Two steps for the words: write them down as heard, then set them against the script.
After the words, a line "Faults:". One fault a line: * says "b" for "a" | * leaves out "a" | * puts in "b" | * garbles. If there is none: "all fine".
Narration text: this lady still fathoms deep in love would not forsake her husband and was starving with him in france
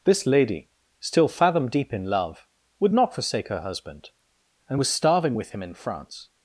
this lady still fathom deep in love would not forsake her husband and was starving with him in france
Faults:
* says "fathom" for "fathoms"